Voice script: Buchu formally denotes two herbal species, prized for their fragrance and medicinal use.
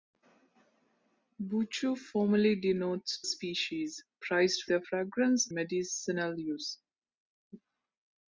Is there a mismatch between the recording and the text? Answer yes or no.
yes